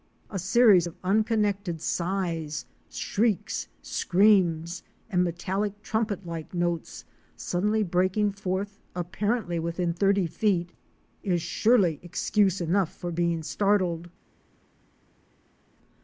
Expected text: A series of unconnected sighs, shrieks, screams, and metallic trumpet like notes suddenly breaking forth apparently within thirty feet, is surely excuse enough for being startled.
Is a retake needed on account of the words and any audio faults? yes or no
no